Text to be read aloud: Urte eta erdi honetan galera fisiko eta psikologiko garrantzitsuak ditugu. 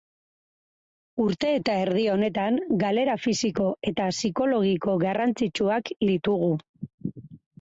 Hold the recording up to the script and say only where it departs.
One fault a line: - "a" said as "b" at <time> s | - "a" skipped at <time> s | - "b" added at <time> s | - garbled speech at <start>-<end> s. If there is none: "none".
none